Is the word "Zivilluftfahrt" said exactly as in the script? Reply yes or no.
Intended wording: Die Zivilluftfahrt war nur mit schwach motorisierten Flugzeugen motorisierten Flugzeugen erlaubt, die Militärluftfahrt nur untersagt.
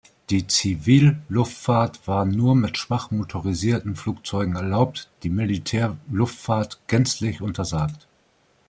yes